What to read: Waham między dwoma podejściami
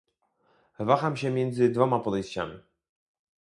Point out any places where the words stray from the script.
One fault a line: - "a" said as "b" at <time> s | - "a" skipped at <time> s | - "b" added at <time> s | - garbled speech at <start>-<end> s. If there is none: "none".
- "się" added at 1.2 s